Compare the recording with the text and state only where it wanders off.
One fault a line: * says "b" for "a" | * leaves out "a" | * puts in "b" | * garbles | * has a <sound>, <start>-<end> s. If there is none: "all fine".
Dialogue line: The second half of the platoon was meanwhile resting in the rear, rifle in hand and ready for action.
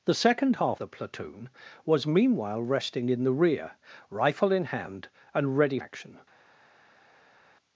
* leaves out "of"
* leaves out "for"